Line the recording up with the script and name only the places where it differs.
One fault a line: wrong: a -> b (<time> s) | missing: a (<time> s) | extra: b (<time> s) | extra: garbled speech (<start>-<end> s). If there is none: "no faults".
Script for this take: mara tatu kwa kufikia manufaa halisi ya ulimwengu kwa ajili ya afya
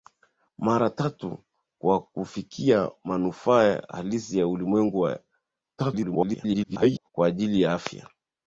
extra: garbled speech (5.8-7.1 s)